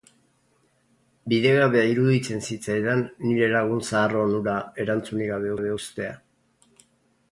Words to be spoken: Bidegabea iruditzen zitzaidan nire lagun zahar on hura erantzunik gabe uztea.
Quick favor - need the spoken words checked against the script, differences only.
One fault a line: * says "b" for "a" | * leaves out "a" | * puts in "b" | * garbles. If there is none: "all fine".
* puts in "gabe"